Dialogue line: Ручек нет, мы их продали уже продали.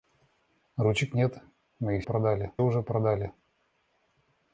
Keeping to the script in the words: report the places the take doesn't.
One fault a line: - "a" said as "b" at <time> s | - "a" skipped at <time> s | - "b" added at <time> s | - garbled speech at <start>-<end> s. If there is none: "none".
none